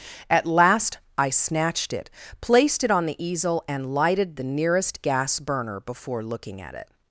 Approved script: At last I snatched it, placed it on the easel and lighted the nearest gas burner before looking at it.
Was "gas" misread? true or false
false